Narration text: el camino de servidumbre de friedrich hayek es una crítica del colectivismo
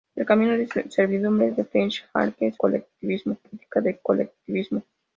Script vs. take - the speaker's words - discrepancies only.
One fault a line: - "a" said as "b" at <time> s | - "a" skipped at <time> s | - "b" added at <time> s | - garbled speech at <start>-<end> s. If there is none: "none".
- "una" said as "colectivismo" at 2.6 s